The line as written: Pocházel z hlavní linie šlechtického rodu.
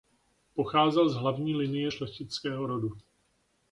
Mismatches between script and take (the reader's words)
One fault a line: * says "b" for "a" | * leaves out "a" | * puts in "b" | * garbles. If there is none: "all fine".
all fine